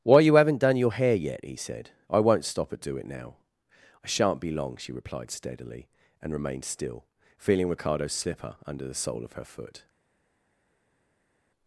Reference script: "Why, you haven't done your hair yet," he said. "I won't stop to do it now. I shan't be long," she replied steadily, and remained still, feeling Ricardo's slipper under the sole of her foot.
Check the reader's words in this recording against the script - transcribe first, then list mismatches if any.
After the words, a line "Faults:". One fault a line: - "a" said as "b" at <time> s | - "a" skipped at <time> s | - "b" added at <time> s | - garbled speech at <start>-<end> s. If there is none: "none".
"Why, you haven't done your hair yet," he said. "I won't stop at do it now. I shan't be long," she replied steadily, and remained still, feeling Ricardo's slipper under the sole of her foot.
Faults:
- "to" said as "at" at 2.7 s